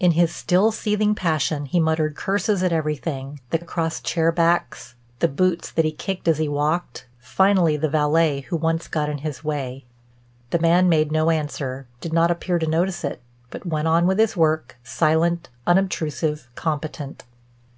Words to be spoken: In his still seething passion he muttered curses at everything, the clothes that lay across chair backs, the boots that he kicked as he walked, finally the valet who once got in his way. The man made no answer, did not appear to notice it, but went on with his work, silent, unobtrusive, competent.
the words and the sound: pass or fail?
fail